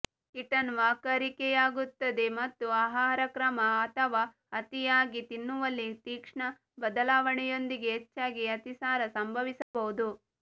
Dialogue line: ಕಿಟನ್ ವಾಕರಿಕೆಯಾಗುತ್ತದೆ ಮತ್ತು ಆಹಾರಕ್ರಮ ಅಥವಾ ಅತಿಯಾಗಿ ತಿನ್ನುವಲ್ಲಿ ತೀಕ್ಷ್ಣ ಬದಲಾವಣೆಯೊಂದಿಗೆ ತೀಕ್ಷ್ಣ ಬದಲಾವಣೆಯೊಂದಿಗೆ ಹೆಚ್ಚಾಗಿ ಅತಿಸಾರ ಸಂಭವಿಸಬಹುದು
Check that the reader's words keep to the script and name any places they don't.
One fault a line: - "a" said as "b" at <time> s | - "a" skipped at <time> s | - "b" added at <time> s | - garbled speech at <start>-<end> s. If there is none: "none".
- "ತೀಕ್ಷ್ಣ ಬದಲಾವಣೆಯೊಂದಿಗೆ" skipped at 7.9 s